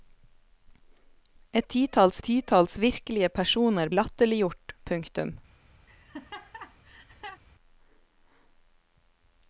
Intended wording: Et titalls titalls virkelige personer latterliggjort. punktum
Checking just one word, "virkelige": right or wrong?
right